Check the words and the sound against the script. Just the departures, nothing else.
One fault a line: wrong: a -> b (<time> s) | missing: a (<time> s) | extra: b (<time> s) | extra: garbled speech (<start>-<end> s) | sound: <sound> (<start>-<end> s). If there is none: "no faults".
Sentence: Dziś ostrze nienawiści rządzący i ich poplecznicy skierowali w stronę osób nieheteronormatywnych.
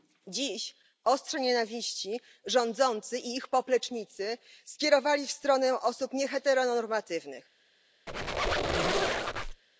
sound: squeak (8.1-9.6 s)